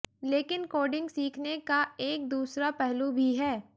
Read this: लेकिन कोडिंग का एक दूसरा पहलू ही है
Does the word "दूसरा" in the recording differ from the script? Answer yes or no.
no